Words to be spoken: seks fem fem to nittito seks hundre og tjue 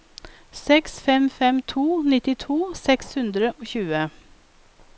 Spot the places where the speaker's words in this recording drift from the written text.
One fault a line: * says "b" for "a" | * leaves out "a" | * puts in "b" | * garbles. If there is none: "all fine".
all fine